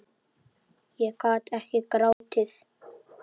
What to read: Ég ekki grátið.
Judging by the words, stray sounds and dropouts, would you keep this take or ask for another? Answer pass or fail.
fail